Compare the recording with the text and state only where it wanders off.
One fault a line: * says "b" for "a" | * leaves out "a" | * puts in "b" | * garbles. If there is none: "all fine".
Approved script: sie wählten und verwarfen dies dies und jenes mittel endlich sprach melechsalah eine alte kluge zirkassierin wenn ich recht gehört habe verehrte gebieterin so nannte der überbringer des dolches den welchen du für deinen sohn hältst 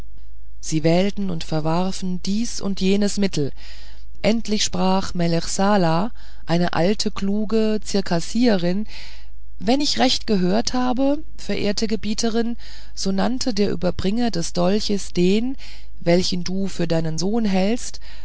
* leaves out "dies"